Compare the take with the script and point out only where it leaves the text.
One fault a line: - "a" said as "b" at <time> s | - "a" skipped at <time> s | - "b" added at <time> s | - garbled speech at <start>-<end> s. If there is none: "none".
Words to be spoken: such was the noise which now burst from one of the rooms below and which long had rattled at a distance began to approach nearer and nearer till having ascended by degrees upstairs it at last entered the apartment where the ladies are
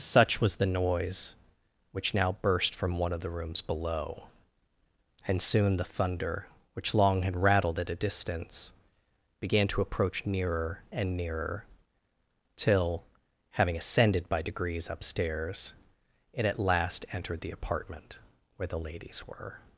- "soon the thunder" added at 5.4 s
- "are" said as "were" at 19.3 s